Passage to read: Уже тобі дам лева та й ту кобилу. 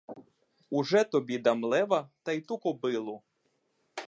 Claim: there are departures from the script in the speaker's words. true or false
false